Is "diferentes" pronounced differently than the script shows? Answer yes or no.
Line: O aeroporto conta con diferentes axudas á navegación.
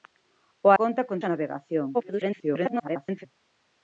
yes